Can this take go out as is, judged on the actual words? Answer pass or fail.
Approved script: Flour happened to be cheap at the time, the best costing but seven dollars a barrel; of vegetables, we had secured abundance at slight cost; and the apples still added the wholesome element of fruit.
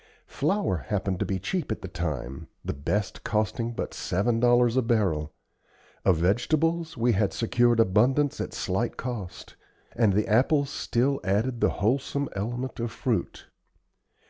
pass